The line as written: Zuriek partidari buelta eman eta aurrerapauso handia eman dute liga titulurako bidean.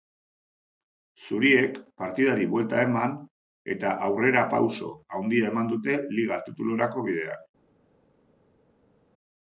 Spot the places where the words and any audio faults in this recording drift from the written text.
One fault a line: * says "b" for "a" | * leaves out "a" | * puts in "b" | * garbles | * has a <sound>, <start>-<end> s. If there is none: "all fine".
all fine